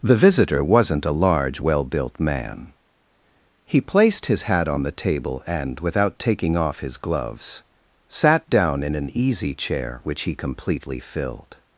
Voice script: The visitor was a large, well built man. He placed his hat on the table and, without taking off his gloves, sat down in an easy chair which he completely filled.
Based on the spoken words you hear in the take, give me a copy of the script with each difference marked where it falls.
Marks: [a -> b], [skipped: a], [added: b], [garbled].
The visitor [was -> wasn't] a large, well built man. He placed his hat on the table and, without taking off his gloves, sat down in an easy chair which he completely filled.